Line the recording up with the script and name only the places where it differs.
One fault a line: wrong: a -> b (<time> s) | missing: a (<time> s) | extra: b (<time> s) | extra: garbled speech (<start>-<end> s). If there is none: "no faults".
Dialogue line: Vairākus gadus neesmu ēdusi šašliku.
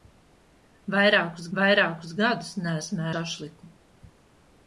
extra: vairākus (1.6 s)
missing: ēdusi (3.1 s)